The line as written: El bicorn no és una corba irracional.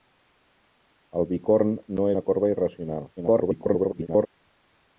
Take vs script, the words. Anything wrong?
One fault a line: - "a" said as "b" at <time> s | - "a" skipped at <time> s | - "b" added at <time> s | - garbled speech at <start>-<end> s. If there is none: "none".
- "és" skipped at 2.1 s
- garbled speech at 3.2-4.3 s